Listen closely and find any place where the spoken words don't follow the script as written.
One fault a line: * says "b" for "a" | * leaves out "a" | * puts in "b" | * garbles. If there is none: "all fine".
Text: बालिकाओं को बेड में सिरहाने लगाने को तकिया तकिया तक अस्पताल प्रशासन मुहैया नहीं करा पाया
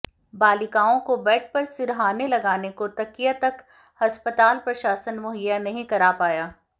* says "पर" for "में"
* leaves out "तकिया"